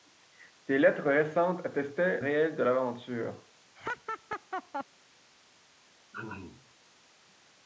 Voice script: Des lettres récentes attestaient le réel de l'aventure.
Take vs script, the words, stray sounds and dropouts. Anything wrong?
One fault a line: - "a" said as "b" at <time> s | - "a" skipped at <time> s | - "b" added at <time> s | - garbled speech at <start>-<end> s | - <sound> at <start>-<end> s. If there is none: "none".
- "le" skipped at 2.2 s
- laugh at 3.7-4.8 s
- throat clearing at 6.1-6.7 s